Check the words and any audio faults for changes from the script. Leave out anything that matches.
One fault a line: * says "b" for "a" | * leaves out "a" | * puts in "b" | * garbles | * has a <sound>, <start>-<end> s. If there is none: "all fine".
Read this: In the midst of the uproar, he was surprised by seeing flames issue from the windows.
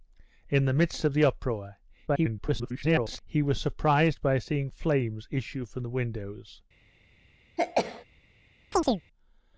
* garbles
* has a sneeze, 7.6-8.0 s
* has a chirp, 8.7-9.0 s